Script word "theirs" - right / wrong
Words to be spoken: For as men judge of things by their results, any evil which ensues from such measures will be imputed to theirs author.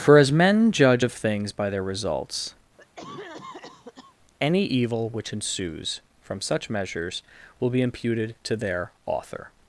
wrong